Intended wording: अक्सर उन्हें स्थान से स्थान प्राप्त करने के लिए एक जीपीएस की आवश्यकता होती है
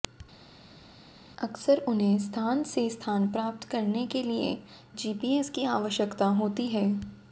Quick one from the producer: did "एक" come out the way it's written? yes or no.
no